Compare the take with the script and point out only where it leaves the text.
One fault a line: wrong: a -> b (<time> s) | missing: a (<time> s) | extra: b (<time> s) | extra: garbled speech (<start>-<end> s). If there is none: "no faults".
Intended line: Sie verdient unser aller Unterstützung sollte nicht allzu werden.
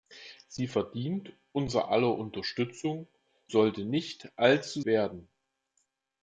no faults